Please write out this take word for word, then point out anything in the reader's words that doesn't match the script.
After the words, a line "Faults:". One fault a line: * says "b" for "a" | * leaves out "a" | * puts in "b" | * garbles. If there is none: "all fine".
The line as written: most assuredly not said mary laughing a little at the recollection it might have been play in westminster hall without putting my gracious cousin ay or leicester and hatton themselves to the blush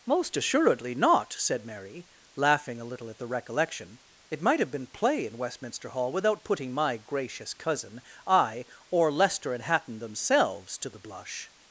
most assuredly not said mary laughing a little at the recollection it might have been play in westminster hall without putting my gracious cousin ay or leicester and hatton themselves to the blush
Faults:
all fine